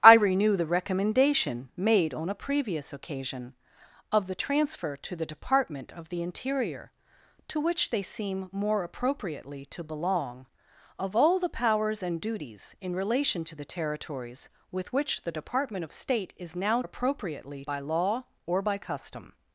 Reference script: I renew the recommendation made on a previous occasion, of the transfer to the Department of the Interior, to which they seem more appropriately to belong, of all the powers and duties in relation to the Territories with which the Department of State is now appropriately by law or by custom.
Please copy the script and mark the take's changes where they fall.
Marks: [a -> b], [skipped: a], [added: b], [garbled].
I renew the recommendation made on a previous occasion, of the transfer to the Department of the Interior, to which they seem more appropriately to belong, of all the powers and duties in relation to the Territories with which the Department of State is now appropriately by law or by custom.